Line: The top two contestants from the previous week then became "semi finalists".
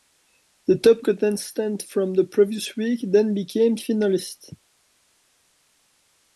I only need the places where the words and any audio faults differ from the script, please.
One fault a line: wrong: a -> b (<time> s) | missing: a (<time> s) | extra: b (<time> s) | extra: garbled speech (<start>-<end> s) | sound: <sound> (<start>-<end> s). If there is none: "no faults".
missing: two (1.1 s)
missing: semi (3.8 s)